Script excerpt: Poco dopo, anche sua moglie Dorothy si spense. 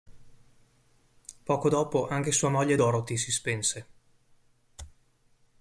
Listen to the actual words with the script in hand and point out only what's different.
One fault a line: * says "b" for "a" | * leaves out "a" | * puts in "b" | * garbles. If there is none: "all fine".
all fine